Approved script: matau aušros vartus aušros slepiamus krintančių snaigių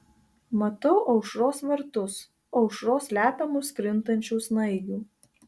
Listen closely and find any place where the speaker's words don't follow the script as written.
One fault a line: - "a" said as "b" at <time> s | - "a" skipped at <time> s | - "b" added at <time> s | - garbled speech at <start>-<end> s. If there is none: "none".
none